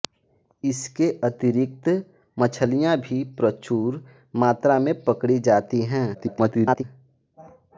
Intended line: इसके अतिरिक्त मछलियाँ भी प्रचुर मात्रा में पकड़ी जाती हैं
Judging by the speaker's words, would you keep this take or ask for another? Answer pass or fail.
fail